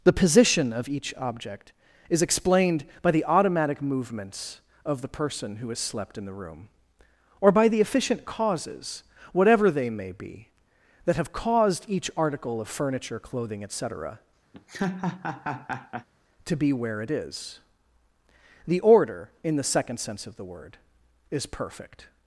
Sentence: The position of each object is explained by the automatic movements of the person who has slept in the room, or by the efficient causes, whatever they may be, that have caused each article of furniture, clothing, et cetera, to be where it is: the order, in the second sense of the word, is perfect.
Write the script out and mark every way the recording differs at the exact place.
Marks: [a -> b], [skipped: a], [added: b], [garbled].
The position of each object is explained by the automatic movements of the person who has slept in the room, or by the efficient causes, whatever they may be, that have caused each article of furniture, clothing, et cetera, to be where it is: the order, in the second sense of the word, is perfect.